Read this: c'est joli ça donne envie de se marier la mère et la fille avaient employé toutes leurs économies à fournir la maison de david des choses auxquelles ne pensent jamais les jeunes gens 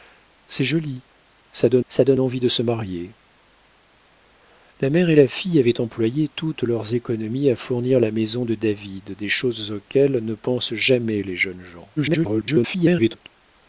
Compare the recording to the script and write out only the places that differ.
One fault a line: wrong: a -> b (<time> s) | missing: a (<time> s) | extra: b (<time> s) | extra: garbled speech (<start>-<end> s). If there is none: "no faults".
extra: ça donne (1.9 s)
extra: garbled speech (12.0-13.3 s)